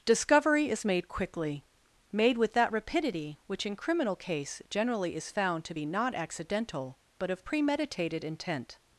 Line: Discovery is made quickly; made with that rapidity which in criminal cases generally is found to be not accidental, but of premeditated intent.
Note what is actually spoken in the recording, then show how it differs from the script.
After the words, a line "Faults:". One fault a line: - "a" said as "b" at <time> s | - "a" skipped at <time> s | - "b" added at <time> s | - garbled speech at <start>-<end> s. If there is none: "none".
Discovery is made quickly; made with that rapidity which in criminal case generally is found to be not accidental, but of premeditated intent.
Faults:
- "cases" said as "case" at 4.2 s